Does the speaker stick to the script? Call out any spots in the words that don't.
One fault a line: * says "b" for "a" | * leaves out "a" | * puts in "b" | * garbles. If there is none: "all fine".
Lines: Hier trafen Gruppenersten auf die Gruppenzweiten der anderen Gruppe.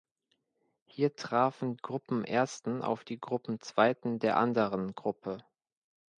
all fine